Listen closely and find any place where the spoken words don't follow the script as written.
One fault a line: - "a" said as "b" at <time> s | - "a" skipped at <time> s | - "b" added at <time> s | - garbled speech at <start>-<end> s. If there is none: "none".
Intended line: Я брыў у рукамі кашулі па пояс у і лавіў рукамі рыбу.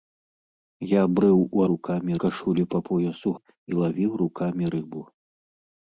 none